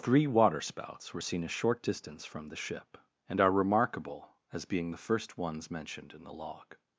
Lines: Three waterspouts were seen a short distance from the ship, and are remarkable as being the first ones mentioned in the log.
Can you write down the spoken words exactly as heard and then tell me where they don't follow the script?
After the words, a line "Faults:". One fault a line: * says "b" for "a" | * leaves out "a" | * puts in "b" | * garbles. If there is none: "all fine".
Three waterspouts were seen a short distance from the ship, and are remarkable as being the first ones mentioned in the log.
Faults:
all fine